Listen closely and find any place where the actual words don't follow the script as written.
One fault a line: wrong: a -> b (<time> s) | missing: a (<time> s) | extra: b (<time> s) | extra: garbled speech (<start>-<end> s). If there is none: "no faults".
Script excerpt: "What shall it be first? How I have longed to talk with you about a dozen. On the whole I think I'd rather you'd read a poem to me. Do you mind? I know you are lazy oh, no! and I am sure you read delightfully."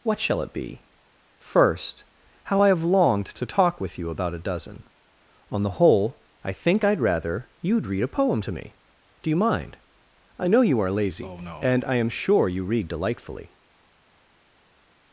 no faults